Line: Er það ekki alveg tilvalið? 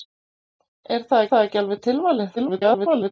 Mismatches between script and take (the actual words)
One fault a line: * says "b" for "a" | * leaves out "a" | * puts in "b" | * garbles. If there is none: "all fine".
* puts in "það"
* garbles